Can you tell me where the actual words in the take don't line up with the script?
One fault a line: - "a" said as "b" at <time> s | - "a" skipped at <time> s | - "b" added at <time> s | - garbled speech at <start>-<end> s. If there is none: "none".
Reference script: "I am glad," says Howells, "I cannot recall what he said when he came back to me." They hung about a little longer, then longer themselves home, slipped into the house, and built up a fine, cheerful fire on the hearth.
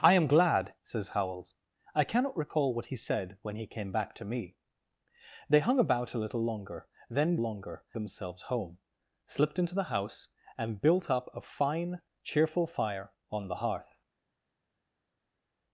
none